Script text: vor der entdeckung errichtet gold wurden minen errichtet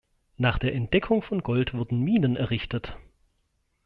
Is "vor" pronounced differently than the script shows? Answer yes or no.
yes